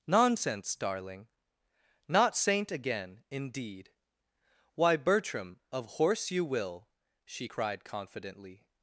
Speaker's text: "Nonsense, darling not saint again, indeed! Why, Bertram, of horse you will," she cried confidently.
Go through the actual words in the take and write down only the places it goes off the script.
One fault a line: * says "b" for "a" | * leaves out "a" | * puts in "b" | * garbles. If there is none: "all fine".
all fine